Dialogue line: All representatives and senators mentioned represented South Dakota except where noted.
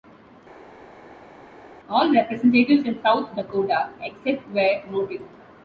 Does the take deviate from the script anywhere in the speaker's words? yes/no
yes